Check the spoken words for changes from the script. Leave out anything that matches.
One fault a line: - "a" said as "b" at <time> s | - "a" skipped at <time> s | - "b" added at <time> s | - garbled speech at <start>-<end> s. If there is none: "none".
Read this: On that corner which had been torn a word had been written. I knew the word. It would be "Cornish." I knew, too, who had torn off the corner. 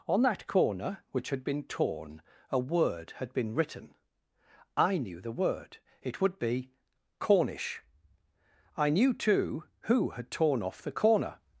none